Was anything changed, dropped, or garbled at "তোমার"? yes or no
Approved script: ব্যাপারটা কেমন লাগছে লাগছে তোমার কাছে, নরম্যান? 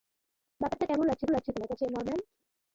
no